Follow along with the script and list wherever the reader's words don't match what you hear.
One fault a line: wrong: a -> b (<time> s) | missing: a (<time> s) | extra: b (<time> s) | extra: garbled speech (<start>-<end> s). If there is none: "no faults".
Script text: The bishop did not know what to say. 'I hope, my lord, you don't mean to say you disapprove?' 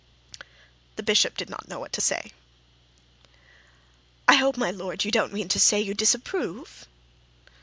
no faults